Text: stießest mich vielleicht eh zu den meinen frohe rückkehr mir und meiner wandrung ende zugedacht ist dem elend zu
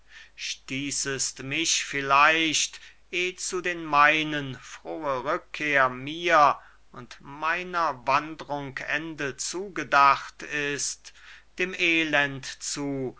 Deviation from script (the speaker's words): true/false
false